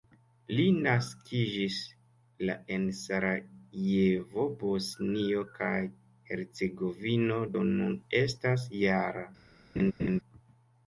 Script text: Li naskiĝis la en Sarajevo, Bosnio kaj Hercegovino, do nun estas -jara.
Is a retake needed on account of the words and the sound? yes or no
yes